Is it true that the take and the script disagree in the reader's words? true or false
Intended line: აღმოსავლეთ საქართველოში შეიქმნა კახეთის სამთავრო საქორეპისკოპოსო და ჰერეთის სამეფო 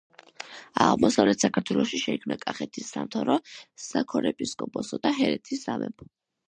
false